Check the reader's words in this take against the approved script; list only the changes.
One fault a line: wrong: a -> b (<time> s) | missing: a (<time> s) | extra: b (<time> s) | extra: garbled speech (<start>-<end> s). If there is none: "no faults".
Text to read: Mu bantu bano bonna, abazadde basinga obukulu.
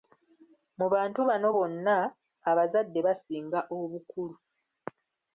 no faults